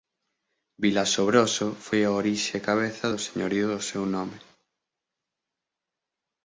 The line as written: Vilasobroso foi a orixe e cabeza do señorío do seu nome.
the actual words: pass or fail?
pass